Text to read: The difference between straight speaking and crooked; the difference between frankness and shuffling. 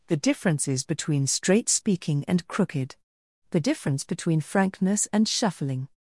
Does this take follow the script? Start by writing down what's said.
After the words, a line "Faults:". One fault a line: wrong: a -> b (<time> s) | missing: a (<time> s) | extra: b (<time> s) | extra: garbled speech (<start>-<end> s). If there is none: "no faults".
The differences between straight speaking and crooked; the difference between frankness and shuffling.
Faults:
wrong: difference -> differences (0.2 s)